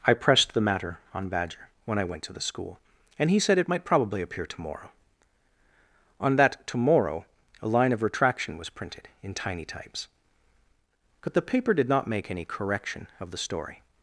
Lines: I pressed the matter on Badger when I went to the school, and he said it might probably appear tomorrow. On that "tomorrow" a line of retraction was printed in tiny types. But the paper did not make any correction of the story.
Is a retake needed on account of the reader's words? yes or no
no